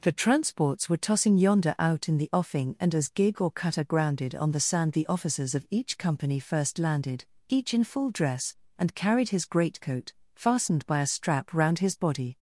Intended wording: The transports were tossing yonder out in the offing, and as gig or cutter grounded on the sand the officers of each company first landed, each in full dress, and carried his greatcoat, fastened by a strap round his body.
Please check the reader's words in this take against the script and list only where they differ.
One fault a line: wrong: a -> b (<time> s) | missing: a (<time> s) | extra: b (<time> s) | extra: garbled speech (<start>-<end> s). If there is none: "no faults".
no faults